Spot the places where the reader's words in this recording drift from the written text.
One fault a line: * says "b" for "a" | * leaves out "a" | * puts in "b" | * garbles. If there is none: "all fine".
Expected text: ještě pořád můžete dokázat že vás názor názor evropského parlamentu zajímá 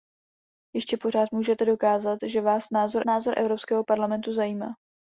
all fine